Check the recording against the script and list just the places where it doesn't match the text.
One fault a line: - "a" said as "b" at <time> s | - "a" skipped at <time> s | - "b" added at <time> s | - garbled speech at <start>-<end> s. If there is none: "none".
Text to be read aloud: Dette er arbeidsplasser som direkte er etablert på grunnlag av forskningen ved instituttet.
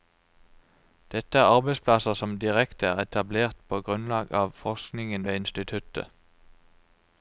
none